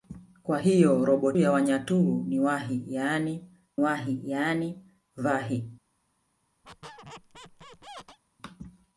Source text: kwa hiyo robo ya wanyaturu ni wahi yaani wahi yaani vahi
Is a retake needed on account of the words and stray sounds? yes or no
yes